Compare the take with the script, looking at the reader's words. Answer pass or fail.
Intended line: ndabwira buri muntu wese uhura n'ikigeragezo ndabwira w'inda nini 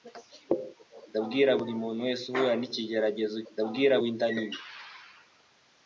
pass